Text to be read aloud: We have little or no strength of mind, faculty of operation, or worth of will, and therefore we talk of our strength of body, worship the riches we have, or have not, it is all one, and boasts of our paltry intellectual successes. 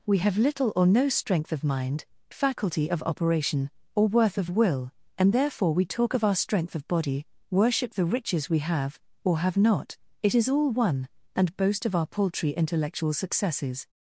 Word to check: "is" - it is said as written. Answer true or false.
true